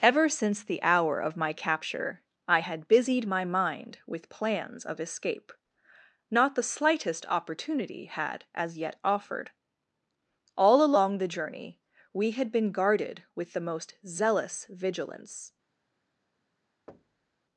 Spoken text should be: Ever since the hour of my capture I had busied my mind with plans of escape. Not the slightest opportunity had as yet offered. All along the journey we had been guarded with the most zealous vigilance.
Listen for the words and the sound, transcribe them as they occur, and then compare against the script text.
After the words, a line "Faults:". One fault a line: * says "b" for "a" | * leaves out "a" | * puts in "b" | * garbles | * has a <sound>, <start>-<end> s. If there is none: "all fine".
Ever since the hour of my capture I had busied my mind with plans of escape. Not the slightest opportunity had as yet offered. All along the journey we had been guarded with the most zealous vigilance.
Faults:
* has a thud, 16.9-17.4 s